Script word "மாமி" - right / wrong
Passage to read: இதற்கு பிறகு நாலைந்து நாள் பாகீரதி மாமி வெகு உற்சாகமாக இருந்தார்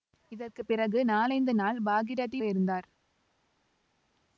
wrong